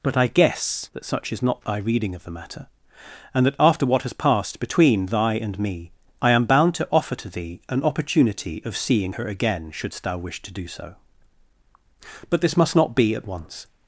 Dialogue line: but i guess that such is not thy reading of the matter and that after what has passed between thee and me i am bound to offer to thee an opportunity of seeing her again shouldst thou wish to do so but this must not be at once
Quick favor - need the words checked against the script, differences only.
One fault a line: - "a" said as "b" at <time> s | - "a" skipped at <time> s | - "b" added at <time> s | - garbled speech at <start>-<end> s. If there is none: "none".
- "thee" said as "thy" at 5.1 s